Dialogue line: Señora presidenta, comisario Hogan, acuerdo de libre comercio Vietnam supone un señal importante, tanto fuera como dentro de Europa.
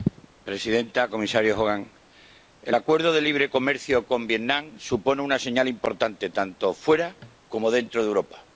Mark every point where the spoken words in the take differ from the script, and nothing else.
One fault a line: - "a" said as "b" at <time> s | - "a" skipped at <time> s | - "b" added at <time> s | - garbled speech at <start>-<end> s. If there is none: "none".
- "el" added at 2.6 s
- "con" added at 4.1 s
- "un" said as "una" at 5.2 s